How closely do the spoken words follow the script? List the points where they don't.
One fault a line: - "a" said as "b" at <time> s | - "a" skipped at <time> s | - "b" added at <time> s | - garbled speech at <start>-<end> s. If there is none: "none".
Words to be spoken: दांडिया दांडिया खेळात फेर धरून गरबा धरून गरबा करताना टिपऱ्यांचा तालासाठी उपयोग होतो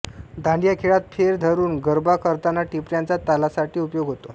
- "दांडिया" skipped at 0.7 s
- "धरून गरबा" skipped at 2.1 s